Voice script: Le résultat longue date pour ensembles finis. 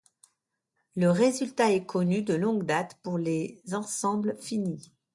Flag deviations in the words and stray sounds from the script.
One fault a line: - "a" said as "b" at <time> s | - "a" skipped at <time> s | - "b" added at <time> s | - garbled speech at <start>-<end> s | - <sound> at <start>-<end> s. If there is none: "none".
- "est connu de" added at 1.7 s
- "les" added at 3.2 s